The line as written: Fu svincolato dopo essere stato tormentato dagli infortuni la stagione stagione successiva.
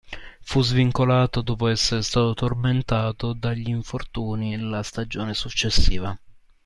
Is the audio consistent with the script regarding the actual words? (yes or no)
no